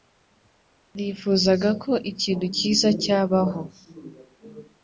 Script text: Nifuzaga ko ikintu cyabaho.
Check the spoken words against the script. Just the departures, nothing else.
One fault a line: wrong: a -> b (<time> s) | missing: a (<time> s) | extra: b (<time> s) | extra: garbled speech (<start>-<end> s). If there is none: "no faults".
extra: cyiza (2.6 s)